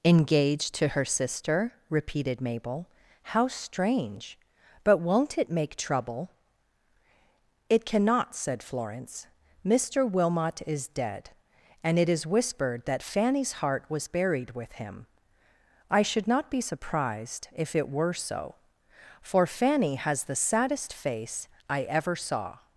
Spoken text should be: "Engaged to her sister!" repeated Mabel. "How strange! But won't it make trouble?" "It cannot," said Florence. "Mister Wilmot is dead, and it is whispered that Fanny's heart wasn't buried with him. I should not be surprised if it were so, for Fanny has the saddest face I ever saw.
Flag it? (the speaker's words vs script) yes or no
yes